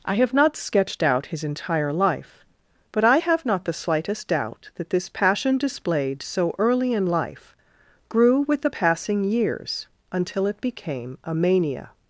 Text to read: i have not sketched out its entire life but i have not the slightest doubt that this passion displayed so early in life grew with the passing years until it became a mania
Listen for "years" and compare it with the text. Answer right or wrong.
right